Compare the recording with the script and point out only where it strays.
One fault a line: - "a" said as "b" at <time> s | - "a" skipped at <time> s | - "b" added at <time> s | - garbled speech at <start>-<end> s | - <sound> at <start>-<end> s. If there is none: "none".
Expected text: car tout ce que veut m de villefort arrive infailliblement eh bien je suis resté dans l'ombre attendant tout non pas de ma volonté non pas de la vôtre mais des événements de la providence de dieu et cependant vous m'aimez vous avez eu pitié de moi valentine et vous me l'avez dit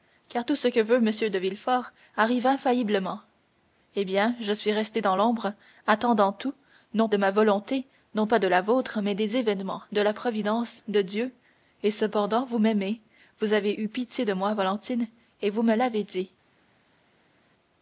- "pas" skipped at 7.1 s